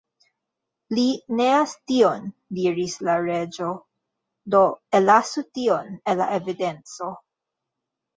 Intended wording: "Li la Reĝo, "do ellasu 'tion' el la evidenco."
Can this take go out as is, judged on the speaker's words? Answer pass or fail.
fail